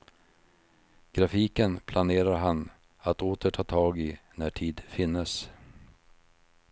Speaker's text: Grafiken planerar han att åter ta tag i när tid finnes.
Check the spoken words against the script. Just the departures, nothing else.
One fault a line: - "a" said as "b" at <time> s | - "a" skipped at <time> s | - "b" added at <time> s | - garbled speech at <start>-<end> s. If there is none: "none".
none